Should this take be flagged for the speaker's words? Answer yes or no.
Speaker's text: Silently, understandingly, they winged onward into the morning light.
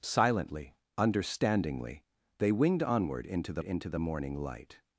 yes